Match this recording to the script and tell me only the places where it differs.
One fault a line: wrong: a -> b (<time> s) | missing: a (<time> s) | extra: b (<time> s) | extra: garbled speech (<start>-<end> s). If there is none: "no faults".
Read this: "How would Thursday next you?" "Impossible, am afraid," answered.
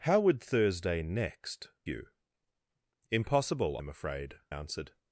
no faults